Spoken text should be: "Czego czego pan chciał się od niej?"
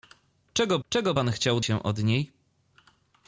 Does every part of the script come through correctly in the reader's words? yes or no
yes